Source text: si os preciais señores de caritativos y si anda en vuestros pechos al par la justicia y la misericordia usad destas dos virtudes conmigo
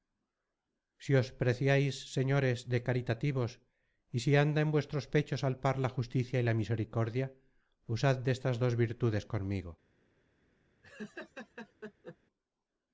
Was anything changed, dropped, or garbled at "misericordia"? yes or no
no